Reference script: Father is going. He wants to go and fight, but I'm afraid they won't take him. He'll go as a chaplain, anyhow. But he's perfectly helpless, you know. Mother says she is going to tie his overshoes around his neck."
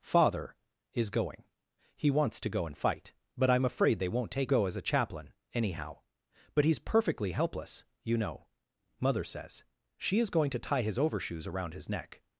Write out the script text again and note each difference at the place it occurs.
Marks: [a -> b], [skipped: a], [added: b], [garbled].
Father is going. He wants to go and fight, but I'm afraid they won't take [skipped: him. He'll] go as a chaplain, anyhow. But he's perfectly helpless, you know. Mother says she is going to tie his overshoes around his neck."